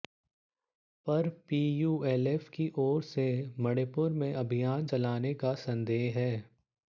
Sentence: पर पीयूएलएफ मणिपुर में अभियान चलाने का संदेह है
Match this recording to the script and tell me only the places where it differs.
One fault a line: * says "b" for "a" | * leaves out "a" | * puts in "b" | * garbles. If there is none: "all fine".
* puts in "की ओर से"